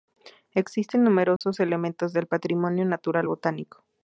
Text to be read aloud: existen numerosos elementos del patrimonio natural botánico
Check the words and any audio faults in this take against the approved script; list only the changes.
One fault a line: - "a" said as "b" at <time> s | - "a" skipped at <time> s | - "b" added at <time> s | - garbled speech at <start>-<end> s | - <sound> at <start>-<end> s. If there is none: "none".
- dropout at 1.4-1.4 s